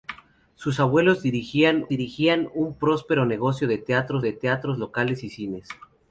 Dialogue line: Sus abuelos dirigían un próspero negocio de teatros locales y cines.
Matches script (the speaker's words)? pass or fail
fail